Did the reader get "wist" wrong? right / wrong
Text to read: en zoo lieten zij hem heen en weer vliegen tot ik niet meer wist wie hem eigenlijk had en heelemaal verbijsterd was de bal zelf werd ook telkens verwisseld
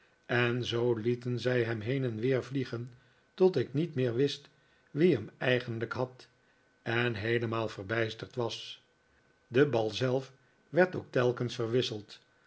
right